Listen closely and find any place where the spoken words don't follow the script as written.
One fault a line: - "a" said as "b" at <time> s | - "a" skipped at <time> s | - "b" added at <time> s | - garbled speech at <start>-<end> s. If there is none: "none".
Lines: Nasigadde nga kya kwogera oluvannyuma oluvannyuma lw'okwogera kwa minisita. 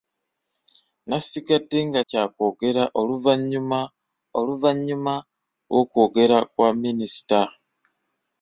none